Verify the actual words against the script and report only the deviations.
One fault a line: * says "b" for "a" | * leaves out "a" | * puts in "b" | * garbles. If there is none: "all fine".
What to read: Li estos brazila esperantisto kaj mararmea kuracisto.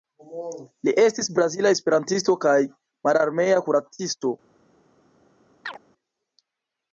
* says "estis" for "estos"